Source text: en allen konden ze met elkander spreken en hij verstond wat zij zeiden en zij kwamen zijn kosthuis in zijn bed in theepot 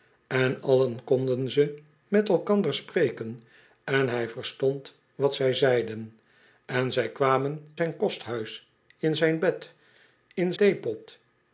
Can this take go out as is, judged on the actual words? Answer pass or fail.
pass